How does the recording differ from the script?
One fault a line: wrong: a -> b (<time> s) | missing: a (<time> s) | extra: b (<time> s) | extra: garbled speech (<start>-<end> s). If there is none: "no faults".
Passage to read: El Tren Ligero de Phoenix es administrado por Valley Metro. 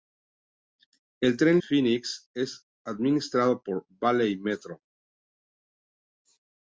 missing: Ligero de (1.6 s)